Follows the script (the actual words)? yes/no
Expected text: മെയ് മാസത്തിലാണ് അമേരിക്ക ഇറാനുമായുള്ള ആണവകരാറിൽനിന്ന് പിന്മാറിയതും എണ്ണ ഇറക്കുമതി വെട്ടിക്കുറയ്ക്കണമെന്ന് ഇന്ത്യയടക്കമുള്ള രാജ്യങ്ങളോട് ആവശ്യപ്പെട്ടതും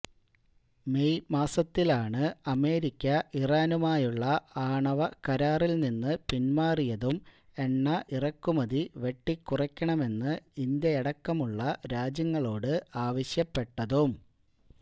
yes